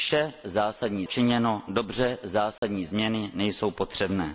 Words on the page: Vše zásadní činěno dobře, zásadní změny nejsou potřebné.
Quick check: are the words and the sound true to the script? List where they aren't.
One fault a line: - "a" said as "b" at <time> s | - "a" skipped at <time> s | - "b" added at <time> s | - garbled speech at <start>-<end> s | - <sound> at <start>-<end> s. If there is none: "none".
- dropout at 2.6-2.6 s